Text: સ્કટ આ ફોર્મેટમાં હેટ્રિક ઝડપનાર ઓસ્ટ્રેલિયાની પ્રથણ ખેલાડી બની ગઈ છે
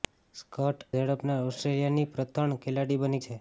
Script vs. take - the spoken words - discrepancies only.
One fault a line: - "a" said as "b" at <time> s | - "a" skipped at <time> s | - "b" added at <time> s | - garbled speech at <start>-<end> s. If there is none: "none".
- "આ ફોર્મેટમાં હેટ્રિક" skipped at 0.8 s
- "ગઈ" skipped at 3.2 s